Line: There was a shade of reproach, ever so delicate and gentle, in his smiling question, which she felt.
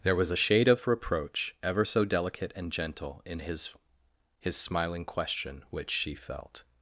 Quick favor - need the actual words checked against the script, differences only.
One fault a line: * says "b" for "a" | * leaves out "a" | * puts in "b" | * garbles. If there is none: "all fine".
* puts in "his"